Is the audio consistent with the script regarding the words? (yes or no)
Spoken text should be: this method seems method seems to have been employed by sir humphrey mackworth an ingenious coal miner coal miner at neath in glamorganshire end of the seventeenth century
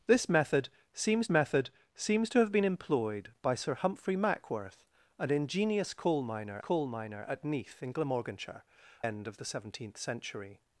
yes